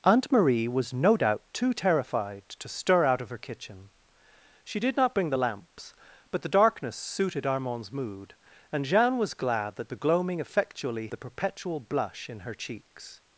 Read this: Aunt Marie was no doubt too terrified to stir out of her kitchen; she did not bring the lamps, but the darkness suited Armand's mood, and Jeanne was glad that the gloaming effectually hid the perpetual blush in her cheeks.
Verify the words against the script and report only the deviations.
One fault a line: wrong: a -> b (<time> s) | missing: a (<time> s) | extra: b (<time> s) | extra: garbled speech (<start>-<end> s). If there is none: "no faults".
missing: hid (11.1 s)